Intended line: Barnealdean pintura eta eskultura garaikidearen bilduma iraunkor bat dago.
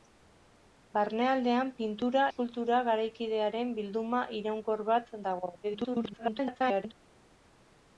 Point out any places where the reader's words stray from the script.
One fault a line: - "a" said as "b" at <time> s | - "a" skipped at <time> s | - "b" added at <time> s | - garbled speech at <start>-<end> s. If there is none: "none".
- "eta" skipped at 2.2 s
- garbled speech at 5.6-6.9 s